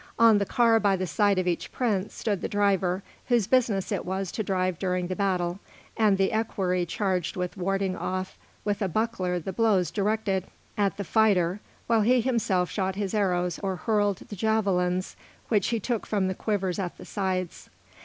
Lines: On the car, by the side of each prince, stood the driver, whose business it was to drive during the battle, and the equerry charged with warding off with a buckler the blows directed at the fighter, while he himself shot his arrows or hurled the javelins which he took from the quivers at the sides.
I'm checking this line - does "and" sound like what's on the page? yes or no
yes